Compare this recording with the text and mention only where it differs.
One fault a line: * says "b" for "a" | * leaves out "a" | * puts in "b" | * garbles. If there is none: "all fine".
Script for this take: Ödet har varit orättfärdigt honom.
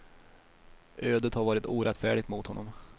* puts in "mot"